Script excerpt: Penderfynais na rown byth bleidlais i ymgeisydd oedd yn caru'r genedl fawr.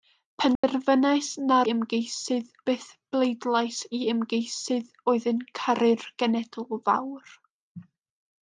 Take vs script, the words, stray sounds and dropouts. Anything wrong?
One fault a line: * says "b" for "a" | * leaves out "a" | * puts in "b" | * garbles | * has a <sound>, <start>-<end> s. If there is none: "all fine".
* has a dropout, 0.6-0.6 s
* says "ymgeisydd" for "rown"